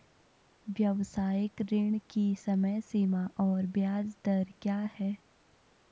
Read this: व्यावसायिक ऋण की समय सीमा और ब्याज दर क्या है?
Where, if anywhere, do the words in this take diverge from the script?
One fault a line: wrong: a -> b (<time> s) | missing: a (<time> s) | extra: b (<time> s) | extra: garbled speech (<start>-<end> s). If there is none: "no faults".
no faults